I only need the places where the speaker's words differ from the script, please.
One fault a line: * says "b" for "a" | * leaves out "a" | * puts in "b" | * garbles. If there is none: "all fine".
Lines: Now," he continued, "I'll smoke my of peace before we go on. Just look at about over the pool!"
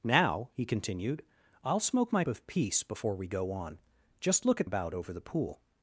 all fine